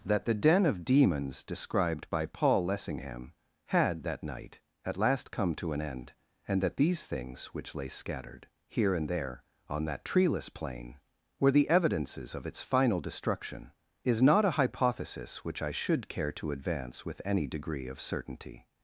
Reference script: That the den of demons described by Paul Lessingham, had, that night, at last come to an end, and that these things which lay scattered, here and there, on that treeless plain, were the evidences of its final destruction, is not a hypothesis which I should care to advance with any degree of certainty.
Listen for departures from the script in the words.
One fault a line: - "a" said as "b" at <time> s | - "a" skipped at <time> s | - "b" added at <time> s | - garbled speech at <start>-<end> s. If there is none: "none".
none